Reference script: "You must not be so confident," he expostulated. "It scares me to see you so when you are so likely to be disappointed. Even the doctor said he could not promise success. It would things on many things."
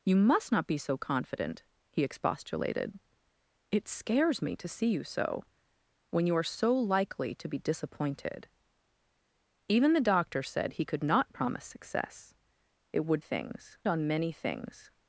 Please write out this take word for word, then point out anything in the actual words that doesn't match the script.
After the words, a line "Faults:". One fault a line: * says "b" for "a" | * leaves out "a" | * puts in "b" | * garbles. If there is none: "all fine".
"You must not be so confident," he expostulated. "It scares me to see you so when you are so likely to be disappointed. Even the doctor said he could not promise success. It would things on many things."
Faults:
all fine